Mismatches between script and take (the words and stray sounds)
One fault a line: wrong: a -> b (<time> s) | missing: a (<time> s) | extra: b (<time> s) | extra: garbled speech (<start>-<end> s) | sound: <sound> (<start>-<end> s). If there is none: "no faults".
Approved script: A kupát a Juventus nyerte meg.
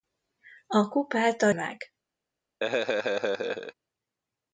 missing: Juventus nyerte (1.5 s)
sound: laugh (2.6-3.7 s)